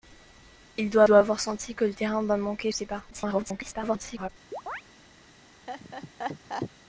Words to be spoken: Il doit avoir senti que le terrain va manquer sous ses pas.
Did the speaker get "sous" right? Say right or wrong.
wrong